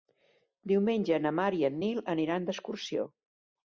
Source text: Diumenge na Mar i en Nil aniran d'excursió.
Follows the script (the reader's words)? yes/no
yes